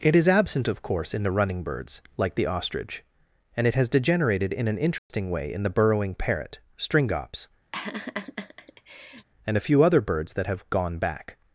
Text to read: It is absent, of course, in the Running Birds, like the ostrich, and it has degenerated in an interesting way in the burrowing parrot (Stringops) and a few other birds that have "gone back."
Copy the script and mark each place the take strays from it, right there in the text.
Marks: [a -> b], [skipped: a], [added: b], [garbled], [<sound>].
It is absent, of course, in the Running Birds, like the ostrich, and it has degenerated in an interesting [dropout] way in the burrowing parrot (Stringops) [laugh] and a few other birds that have "gone back."